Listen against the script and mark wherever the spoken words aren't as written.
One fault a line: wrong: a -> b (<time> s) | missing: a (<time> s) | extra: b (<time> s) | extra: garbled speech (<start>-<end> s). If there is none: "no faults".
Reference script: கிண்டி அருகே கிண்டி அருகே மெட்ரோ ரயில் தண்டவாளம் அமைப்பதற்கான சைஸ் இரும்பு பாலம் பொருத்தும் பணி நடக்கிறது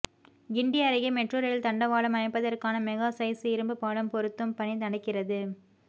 missing: கிண்டி அருகே (1.1 s)
extra: மெகா (2.9 s)